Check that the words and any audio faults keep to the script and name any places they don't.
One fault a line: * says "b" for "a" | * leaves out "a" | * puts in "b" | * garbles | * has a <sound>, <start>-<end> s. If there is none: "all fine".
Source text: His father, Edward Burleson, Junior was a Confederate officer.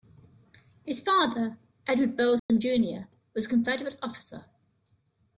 * has a dropout, 2.4-2.5 s